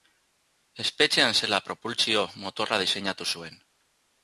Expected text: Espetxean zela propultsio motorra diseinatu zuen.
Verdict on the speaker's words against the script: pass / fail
pass